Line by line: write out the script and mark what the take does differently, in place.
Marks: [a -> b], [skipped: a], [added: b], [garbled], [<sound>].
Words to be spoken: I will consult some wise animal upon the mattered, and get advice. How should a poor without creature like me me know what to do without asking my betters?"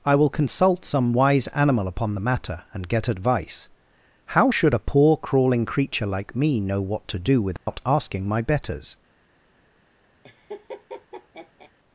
I will consult some wise animal upon the [mattered, -> matter] and get advice. How should a poor [without -> crawling] creature like me [skipped: me] know what to do without [dropout] asking my betters?" [laugh]